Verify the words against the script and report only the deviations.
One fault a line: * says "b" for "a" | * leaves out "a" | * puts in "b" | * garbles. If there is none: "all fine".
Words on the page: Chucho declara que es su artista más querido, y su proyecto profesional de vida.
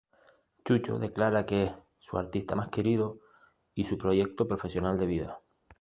all fine